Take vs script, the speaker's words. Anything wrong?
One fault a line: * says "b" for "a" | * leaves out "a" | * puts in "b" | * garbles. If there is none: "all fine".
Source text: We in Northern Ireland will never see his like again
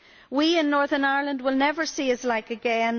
all fine